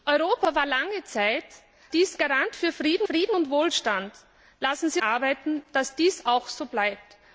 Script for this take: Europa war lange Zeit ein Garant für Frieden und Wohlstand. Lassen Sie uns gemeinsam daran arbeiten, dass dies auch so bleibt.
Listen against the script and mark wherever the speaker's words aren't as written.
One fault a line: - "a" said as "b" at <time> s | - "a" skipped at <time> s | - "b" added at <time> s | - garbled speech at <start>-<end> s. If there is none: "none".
- "ein" said as "dies" at 1.9 s
- "Frieden" added at 3.0 s
- "uns gemeinsam daran" skipped at 5.0 s